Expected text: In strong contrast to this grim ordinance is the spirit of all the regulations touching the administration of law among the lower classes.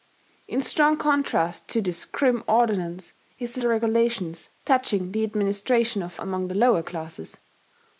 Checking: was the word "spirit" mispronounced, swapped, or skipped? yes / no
yes